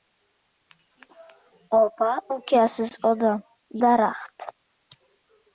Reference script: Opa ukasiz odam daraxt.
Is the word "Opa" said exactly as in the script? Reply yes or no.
yes